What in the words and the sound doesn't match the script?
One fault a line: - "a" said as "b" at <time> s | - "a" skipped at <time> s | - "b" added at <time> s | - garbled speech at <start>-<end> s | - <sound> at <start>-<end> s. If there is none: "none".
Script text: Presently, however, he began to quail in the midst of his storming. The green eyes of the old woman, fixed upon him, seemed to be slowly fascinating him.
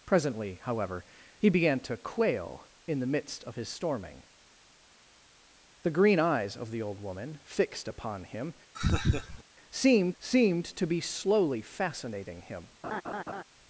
- laugh at 8.7-9.4 s
- "seemed" added at 10.2 s
- laugh at 12.8-13.4 s